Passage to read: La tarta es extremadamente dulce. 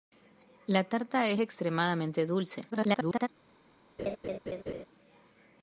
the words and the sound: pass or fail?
fail